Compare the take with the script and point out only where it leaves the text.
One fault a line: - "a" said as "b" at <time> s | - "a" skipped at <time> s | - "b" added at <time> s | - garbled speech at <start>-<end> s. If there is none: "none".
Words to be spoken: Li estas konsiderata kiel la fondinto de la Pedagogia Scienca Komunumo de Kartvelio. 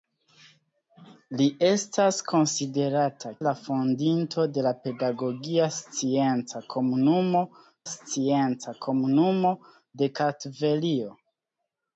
- "kiel" skipped at 3.3 s
- "Scienca Komunumo" added at 7.9 s